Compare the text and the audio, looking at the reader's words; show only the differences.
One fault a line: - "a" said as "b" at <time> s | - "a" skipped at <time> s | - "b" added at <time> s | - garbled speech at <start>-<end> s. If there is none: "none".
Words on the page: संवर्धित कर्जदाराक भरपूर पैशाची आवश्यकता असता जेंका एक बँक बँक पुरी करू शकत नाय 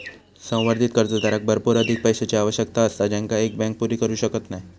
- "अधिक" added at 1.8 s
- "बँक" skipped at 3.8 s